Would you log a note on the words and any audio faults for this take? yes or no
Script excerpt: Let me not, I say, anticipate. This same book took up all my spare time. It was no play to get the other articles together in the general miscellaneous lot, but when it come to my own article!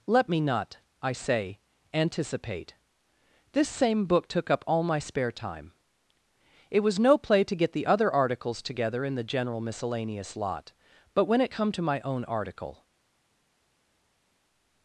no